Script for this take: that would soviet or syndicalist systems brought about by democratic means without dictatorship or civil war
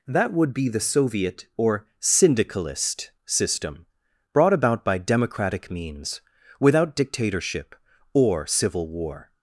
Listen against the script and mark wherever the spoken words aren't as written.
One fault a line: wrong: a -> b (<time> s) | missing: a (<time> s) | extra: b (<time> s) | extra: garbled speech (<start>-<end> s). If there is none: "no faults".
extra: be the (0.5 s)
wrong: systems -> system (3.2 s)